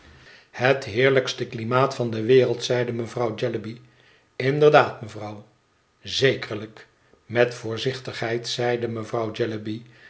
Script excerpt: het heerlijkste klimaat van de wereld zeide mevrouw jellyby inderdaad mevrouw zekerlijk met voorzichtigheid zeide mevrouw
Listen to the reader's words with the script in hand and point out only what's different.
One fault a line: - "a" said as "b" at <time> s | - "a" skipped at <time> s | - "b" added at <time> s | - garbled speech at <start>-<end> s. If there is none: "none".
none